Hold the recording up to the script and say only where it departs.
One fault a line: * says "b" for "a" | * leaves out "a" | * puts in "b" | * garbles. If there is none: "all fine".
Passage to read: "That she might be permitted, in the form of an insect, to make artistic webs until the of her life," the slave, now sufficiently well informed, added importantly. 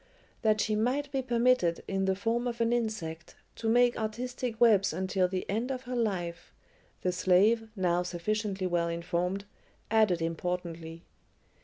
* puts in "end"